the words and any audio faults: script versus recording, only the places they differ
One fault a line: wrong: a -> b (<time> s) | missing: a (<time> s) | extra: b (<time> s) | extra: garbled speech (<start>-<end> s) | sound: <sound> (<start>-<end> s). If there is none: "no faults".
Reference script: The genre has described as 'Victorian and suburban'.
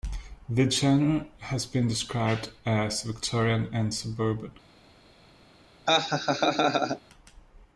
extra: been (1.7 s)
sound: laugh (5.9-7.0 s)